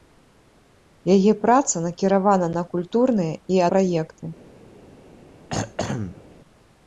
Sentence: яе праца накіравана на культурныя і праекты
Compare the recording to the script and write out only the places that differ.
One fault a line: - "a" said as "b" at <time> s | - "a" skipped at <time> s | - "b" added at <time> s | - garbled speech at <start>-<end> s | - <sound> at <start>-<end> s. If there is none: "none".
- throat clearing at 5.5-6.2 s